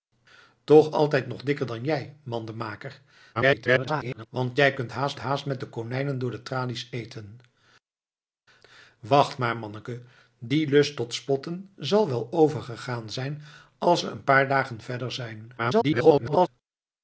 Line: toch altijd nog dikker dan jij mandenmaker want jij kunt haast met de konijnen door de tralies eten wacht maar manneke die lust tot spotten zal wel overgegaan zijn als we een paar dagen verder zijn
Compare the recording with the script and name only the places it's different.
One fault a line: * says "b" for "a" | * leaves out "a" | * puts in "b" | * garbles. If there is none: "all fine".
* garbles
* puts in "haast"
* garbles